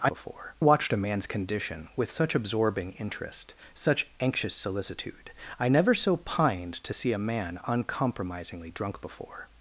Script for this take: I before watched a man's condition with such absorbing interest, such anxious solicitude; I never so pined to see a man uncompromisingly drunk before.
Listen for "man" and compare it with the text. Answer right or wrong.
right